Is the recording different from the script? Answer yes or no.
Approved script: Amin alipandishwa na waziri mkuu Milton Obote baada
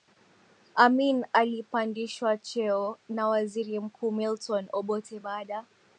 yes